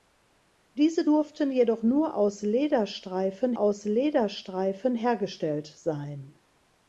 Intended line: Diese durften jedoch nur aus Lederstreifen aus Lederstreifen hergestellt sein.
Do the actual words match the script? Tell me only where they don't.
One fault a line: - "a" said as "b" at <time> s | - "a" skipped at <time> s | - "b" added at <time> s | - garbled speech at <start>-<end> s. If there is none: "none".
none